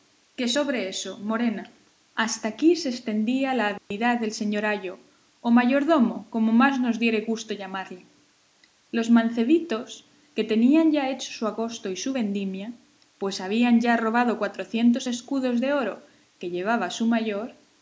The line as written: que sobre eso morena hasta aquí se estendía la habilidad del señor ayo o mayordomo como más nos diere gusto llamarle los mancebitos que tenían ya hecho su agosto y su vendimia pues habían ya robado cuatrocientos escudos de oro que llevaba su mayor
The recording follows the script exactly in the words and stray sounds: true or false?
false